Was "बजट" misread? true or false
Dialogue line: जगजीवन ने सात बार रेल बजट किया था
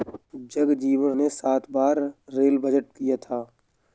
false